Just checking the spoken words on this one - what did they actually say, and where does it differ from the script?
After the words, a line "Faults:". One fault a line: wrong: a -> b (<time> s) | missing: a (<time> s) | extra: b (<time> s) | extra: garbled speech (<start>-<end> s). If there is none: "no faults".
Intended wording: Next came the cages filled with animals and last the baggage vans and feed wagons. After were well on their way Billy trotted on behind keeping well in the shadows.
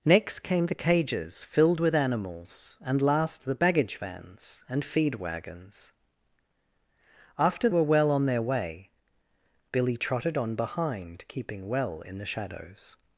Next came the cages filled with animals and last the baggage vans and feed wagons. After were well on their way Billy trotted on behind keeping well in the shadows.
Faults:
no faults